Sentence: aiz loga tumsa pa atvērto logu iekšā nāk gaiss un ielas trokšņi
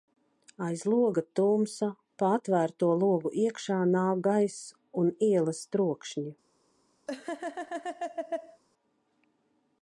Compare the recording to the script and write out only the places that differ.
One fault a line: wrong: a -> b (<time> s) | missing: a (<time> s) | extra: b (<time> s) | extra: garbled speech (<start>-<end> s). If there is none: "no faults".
no faults